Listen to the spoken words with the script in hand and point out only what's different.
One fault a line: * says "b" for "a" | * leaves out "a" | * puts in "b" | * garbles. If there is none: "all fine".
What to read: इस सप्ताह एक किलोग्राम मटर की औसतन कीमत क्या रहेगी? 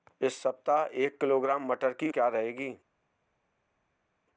* leaves out "औसतन कीमत"